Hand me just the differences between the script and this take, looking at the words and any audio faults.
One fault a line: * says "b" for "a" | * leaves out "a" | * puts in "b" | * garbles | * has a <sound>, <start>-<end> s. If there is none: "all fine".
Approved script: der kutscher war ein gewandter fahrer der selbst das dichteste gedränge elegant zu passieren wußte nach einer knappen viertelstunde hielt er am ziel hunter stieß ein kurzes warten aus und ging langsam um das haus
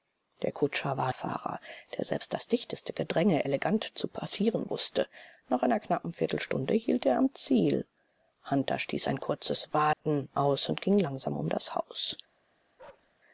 * leaves out "ein gewandter"
* has a dropout, 9.9-10.0 s
* has a bark, 12.8-13.1 s